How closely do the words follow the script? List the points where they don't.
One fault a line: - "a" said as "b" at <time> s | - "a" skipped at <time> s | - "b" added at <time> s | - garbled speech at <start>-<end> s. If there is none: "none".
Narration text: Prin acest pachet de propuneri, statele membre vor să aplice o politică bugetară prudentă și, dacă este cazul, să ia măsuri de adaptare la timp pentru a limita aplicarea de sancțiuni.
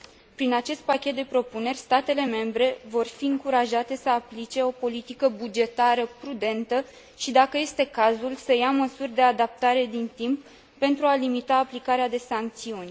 - "fi încurajate" added at 3.1 s
- "la" said as "din" at 9.9 s